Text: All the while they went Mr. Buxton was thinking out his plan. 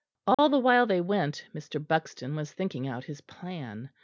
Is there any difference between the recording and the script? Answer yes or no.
no